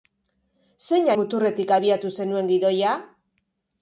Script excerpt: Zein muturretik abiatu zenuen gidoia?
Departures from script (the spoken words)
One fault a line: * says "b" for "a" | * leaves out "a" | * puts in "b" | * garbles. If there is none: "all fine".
all fine